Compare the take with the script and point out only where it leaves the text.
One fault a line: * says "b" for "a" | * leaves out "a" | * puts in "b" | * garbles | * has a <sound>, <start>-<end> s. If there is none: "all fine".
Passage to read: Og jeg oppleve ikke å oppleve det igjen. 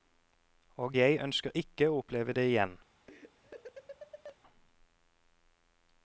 * says "ønsker" for "oppleve"
* has a laugh, 3.1-4.4 s